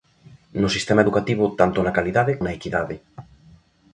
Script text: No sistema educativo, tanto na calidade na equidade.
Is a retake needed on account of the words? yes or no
no